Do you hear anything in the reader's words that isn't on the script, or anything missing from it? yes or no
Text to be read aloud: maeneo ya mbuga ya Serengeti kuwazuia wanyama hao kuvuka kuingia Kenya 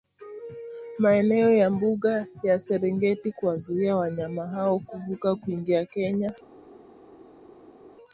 no